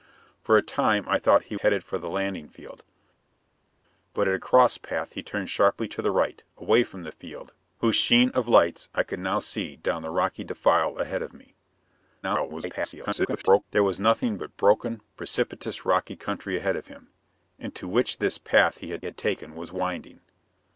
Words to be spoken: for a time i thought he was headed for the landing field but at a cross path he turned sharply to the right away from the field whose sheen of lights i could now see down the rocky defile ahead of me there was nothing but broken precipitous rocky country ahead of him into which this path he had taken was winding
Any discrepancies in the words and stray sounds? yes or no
yes